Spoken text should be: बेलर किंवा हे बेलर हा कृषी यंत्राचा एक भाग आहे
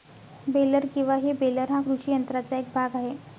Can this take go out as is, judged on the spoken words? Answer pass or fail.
pass